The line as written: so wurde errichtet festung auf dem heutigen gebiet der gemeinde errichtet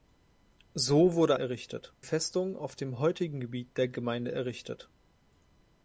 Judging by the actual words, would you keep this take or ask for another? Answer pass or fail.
pass